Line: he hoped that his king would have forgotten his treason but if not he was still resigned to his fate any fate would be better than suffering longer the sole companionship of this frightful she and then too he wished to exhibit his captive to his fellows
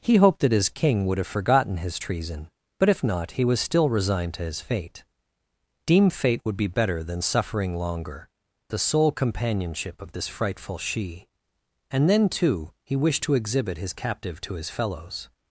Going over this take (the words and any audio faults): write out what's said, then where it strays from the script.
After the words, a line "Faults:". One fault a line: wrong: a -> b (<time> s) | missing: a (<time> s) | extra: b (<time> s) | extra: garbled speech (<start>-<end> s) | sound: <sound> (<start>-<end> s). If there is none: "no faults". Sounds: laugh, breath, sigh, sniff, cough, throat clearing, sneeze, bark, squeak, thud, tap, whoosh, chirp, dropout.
he hoped that his king would have forgotten his treason but if not he was still resigned to his fate deem fate would be better than suffering longer the sole companionship of this frightful she and then too he wished to exhibit his captive to his fellows
Faults:
wrong: any -> deem (5.9 s)